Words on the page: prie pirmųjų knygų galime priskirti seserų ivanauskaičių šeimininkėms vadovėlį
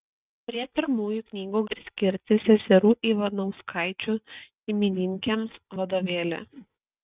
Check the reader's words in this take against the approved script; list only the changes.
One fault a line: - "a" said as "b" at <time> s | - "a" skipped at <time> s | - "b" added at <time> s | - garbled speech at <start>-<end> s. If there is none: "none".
- "galime" skipped at 1.6 s